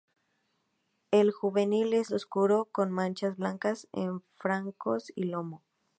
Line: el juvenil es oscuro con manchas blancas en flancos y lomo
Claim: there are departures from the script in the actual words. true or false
false